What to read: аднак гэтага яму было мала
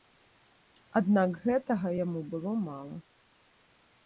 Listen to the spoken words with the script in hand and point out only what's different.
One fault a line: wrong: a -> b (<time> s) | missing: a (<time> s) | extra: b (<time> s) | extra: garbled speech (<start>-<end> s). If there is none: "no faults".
no faults